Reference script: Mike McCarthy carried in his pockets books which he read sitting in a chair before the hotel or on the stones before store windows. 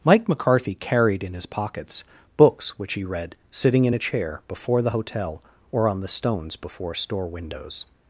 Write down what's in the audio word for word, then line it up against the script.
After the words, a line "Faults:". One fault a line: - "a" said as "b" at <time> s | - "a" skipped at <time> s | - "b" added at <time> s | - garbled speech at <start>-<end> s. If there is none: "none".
Mike McCarthy carried in his pockets books which he read sitting in a chair before the hotel or on the stones before store windows.
Faults:
none